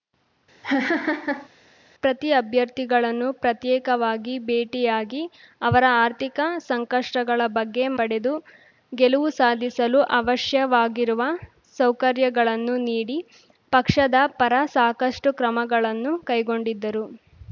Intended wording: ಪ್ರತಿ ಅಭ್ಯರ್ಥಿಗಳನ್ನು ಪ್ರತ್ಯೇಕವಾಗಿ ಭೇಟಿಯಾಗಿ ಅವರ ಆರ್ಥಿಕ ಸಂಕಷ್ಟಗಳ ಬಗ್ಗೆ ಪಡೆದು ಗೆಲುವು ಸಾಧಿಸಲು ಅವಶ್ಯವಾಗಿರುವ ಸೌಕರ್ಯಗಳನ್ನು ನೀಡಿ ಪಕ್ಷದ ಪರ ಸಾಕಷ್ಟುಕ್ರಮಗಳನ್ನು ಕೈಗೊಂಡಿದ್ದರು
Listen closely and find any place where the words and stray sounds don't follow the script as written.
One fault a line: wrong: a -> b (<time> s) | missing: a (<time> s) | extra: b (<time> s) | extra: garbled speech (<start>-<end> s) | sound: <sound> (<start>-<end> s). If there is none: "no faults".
sound: laugh (0.6-1.5 s)